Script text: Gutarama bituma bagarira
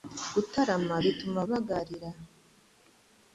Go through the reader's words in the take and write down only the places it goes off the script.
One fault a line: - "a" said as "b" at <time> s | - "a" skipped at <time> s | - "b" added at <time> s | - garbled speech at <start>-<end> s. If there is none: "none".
none